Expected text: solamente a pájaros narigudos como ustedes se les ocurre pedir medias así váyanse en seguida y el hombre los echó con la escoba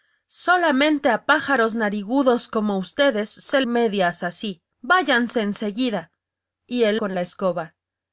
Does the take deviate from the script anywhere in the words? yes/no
yes